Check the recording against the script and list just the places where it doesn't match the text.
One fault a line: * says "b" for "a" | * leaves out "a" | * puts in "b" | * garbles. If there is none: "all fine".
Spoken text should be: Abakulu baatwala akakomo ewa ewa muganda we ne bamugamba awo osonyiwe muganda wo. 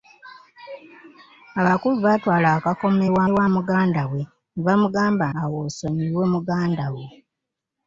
all fine